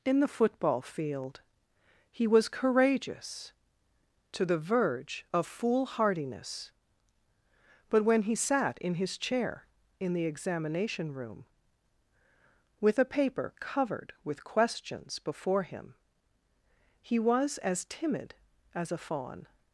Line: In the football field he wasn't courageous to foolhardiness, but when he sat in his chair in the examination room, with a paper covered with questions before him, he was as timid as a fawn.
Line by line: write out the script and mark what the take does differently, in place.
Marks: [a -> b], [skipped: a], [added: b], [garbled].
In the football field he [wasn't -> was] courageous to [added: the verge of] foolhardiness, but when he sat in his chair in the examination room, with a paper covered with questions before him, he was as timid as a fawn.